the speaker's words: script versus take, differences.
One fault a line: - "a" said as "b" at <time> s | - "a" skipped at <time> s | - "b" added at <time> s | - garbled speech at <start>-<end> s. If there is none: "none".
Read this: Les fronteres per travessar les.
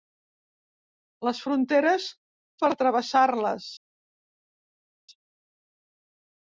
none